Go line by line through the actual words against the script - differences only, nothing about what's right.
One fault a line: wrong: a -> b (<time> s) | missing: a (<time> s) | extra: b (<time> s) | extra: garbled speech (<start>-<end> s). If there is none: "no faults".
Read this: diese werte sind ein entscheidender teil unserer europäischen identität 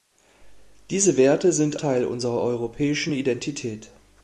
missing: ein entscheidender (1.8 s)